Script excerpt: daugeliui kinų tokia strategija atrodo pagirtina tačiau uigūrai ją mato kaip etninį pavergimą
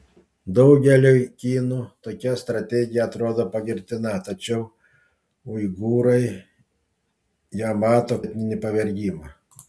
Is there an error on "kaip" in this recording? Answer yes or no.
yes